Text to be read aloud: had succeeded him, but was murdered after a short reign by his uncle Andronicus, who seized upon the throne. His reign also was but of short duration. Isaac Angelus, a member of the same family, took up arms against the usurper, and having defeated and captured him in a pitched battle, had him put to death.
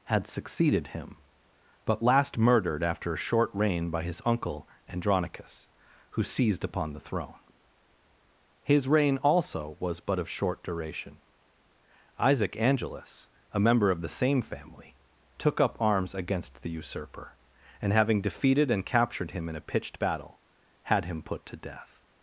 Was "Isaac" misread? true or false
false